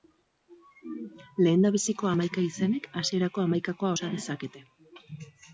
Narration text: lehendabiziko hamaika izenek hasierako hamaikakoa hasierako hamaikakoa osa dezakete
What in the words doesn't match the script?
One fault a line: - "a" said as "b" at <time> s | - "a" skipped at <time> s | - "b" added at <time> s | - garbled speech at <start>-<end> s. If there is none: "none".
- "hasierako hamaikakoa" skipped at 3.9 s